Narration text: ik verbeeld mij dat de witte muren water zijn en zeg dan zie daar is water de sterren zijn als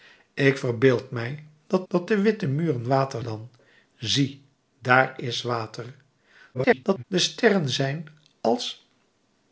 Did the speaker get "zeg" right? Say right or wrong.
wrong